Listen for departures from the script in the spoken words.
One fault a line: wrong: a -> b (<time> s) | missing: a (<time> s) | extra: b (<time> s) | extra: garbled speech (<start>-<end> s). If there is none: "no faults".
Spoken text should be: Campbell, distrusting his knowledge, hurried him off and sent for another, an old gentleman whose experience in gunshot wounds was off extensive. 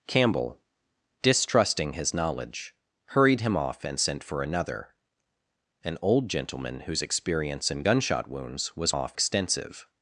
no faults